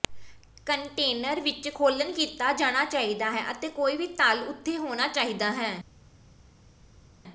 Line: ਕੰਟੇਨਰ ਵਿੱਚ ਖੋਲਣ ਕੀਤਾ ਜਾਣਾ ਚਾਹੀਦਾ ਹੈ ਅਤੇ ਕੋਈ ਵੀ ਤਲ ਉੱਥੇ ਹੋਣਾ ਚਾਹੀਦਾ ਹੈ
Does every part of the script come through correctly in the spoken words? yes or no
yes